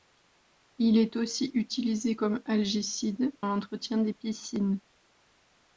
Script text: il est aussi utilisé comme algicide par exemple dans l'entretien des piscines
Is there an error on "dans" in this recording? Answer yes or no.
yes